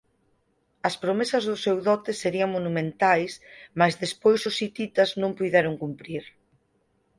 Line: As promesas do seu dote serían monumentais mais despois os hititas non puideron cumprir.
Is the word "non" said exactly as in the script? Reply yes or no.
yes